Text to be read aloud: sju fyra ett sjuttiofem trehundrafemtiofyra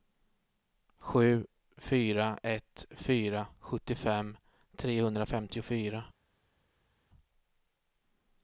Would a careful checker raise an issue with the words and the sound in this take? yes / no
yes